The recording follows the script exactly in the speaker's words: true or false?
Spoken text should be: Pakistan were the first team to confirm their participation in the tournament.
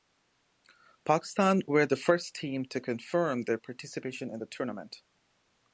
true